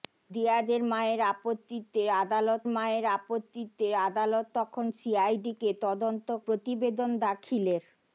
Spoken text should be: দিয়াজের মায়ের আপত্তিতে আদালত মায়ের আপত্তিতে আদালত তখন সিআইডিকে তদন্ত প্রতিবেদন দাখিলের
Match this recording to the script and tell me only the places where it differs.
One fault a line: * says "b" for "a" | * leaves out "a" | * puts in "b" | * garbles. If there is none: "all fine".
all fine